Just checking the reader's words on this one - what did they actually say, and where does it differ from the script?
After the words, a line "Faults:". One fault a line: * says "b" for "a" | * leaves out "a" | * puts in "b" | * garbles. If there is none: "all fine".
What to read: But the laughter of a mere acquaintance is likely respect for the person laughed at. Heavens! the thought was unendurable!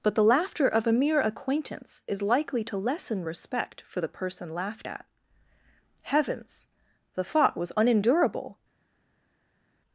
But the laughter of a mere acquaintance is likely to lessen respect for the person laughed at. Heavens! the thought was unendurable!
Faults:
* puts in "to lessen"